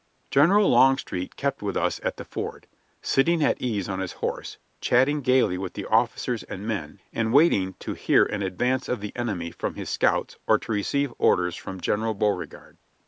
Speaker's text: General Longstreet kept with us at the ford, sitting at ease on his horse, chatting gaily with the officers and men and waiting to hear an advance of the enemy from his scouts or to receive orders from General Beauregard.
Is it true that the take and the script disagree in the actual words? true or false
false